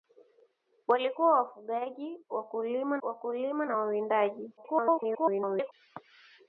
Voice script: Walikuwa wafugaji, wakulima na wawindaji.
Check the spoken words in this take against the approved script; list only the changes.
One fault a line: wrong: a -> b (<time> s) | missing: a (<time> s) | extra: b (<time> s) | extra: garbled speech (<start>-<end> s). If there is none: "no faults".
extra: wakulima (3.0 s)
extra: garbled speech (4.6-5.7 s)